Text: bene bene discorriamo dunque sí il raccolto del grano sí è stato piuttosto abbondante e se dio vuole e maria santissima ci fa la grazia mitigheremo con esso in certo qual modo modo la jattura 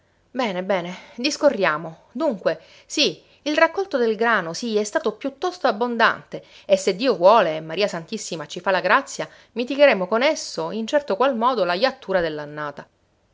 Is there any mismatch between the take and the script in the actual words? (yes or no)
yes